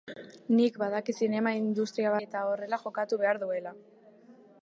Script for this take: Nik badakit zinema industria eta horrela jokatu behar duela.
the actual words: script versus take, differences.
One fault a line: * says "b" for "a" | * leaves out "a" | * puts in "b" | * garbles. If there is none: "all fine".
all fine